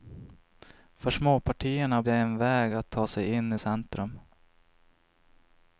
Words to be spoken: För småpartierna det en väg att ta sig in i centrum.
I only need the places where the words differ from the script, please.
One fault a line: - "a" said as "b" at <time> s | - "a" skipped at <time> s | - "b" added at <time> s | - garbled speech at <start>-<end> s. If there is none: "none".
none